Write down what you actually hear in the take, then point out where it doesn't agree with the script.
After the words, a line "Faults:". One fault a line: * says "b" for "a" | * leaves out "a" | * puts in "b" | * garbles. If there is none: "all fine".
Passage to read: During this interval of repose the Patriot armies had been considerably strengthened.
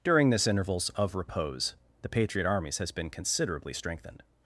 During this intervals of repose the Patriot armies has been considerably strengthened.
Faults:
* says "intervals" for "interval"
* says "has" for "had"